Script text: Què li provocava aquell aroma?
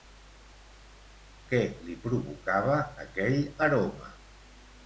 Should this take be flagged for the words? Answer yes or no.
no